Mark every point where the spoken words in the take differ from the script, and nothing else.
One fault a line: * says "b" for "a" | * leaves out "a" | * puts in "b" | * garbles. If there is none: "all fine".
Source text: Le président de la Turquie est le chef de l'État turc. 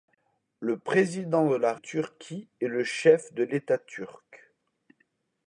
all fine